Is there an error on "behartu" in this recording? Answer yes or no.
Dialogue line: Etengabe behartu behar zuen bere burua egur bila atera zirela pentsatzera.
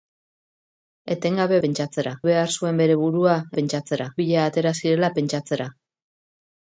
yes